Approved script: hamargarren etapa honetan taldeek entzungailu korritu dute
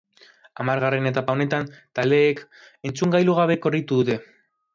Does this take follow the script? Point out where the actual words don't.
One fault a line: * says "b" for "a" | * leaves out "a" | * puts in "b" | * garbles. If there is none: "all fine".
* puts in "gabe"